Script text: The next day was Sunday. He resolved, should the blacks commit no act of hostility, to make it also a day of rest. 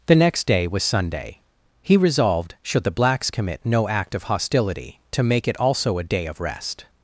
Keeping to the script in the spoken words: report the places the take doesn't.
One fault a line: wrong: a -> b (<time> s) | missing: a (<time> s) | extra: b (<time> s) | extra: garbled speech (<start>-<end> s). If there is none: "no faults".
no faults